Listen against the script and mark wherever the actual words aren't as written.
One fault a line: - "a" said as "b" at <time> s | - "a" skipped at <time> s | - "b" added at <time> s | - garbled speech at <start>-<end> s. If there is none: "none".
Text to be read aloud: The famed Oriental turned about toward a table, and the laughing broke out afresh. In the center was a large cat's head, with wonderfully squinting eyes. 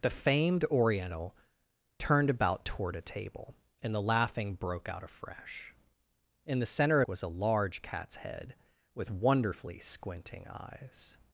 none